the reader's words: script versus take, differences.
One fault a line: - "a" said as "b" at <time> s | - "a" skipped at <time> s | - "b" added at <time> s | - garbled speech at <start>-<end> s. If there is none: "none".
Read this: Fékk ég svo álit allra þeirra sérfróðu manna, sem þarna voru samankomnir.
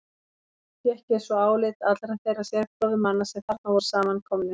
none